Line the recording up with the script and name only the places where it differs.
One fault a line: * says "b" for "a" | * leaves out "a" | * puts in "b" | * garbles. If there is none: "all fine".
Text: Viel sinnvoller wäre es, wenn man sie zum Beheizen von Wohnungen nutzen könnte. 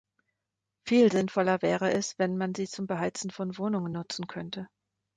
all fine